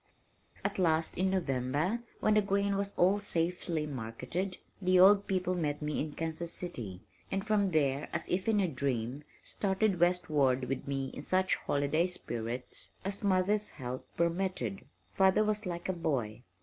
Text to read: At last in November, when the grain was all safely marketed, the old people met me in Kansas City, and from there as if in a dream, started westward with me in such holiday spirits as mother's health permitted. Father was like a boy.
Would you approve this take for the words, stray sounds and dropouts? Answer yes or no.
yes